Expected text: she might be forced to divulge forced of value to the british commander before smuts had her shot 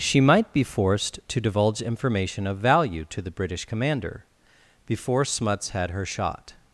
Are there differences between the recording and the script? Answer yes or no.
yes